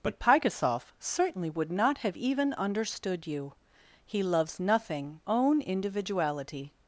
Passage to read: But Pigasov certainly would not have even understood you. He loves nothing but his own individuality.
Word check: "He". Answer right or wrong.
right